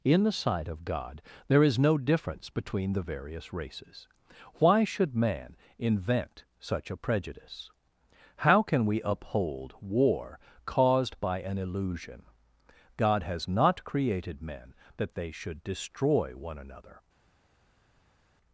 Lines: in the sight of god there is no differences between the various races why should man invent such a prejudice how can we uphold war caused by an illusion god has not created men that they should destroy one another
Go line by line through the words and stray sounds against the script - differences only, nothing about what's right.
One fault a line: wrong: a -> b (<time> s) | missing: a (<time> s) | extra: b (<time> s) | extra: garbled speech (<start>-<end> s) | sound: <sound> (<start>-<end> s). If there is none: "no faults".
wrong: differences -> difference (2.0 s)